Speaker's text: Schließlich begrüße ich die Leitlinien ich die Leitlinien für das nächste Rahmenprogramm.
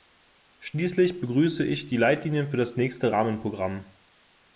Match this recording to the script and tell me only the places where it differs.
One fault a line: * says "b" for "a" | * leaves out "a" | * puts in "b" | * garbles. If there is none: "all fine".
* leaves out "ich die Leitlinien"